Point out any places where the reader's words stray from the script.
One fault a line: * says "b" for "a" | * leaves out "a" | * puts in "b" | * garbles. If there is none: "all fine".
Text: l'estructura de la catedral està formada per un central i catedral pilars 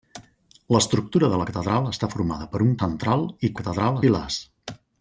all fine